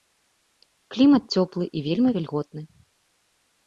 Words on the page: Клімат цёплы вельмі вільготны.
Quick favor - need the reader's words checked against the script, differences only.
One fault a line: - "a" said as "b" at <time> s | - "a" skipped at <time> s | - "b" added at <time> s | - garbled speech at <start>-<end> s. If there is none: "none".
- "і" added at 1.8 s